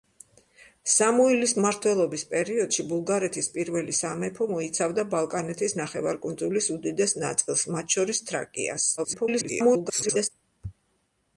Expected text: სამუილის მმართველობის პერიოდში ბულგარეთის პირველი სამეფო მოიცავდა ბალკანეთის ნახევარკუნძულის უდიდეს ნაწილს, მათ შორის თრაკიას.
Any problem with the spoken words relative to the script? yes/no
yes